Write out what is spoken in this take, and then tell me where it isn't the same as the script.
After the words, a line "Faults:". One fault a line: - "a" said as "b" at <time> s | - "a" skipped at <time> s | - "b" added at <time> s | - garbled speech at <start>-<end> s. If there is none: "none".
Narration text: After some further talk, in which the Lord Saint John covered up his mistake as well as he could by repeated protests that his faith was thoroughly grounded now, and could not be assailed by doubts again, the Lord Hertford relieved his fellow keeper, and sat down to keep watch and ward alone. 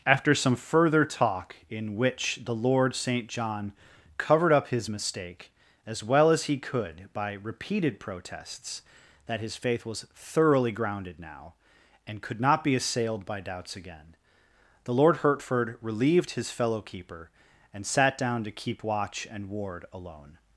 After some further talk, in which the Lord Saint John covered up his mistake as well as he could by repeated protests that his faith was thoroughly grounded now, and could not be assailed by doubts again, the Lord Hertford relieved his fellow keeper, and sat down to keep watch and ward alone.
Faults:
none